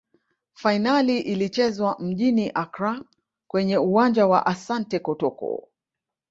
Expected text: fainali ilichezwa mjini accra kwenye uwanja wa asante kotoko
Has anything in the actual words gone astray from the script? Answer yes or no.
no